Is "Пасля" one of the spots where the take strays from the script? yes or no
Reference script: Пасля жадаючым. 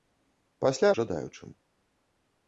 no